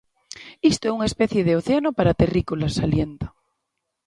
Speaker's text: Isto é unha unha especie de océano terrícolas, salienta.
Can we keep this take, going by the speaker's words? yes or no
no